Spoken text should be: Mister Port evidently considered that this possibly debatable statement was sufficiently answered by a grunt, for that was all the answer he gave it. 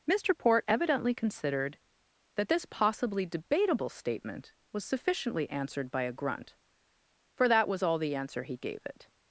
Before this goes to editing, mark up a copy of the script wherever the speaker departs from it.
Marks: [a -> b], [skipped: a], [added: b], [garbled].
Mister Port evidently considered that this possibly debatable statement was sufficiently answered by a grunt, for that was all the answer he gave it.